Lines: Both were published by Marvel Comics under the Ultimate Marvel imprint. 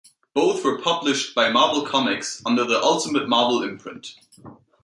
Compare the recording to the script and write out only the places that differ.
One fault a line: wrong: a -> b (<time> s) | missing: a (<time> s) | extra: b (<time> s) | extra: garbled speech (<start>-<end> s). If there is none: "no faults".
no faults